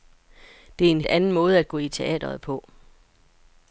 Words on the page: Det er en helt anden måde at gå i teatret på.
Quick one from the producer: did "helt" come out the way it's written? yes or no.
no